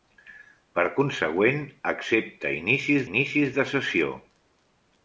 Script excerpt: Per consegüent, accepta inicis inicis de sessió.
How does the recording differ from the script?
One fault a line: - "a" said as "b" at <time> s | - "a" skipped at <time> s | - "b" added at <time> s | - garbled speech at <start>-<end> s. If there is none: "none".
none